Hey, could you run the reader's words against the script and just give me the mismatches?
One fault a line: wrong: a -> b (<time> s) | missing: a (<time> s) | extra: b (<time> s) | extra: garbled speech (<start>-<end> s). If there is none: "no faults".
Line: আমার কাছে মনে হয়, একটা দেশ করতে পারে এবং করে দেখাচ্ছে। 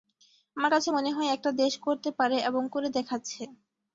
no faults